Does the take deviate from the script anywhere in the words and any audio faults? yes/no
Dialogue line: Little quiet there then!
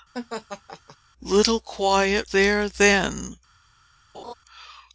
yes